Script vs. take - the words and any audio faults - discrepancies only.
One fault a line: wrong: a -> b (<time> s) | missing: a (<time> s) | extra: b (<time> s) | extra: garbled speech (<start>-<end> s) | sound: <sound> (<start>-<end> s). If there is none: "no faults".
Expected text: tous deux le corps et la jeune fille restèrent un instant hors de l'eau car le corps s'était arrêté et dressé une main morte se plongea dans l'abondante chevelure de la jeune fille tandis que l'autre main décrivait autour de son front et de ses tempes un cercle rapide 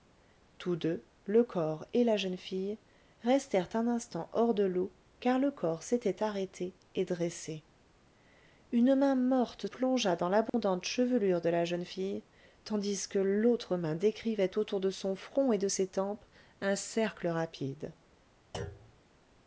missing: se (9.7 s)
sound: dropout (10.5-10.5 s)
sound: thud (18.5-19.0 s)